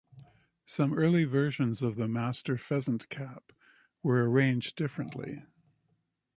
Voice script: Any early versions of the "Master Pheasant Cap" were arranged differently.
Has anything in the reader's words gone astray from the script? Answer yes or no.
yes